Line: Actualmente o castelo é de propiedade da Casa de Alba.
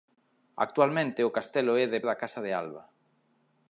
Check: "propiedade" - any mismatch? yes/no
yes